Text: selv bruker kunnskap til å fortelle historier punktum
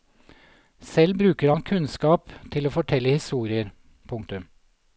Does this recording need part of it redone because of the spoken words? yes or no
yes